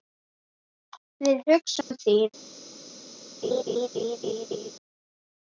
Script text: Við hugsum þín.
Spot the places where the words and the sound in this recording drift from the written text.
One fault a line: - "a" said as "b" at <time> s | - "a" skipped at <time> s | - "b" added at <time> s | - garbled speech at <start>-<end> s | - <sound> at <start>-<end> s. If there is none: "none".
- dropout at 1.8-1.9 s
- laugh at 3.4-4.7 s